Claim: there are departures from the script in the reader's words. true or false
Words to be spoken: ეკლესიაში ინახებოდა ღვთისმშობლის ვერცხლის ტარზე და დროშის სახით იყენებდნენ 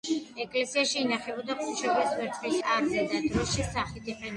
false